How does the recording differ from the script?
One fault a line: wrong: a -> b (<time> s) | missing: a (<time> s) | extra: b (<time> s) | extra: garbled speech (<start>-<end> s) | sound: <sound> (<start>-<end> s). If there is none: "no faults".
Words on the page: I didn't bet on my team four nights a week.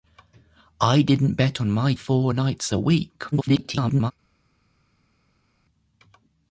missing: team (1.9 s)
extra: garbled speech (3.3-4.1 s)